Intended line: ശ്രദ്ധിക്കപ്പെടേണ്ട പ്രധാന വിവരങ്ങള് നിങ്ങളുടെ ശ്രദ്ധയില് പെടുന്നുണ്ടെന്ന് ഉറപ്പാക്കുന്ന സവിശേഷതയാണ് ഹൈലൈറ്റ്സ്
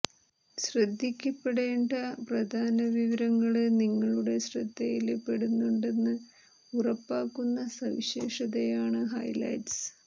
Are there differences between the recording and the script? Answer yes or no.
no